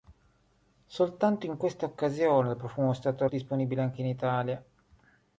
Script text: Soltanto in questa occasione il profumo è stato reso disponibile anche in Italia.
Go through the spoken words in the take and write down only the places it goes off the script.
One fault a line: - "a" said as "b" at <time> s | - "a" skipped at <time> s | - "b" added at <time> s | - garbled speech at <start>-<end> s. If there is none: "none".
- "reso" skipped at 3.3 s